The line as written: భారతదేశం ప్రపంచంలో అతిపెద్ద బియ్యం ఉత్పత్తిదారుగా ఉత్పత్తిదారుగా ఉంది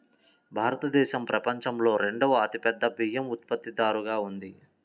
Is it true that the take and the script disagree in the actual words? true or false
true